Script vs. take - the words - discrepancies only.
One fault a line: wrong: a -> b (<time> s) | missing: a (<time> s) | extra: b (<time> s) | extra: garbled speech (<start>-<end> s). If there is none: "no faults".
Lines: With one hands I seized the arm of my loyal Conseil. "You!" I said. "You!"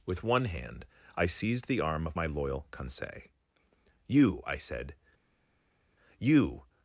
wrong: hands -> hand (0.5 s)